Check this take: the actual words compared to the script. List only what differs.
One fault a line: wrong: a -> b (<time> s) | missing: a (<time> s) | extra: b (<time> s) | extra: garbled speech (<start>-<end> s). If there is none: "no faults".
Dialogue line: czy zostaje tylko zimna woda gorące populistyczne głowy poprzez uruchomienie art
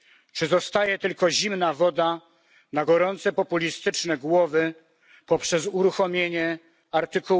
extra: na (2.7 s)